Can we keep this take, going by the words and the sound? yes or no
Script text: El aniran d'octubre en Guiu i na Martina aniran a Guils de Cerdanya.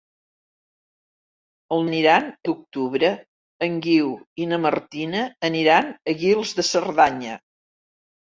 yes